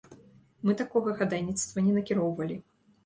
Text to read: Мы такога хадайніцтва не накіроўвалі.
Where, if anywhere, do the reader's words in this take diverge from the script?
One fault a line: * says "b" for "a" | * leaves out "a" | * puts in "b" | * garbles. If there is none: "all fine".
all fine